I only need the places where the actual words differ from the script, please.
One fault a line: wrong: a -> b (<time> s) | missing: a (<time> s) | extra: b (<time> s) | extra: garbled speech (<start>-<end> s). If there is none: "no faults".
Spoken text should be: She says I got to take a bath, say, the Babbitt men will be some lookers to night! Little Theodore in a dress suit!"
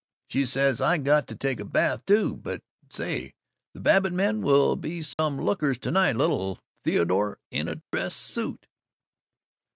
extra: too But (2.1 s)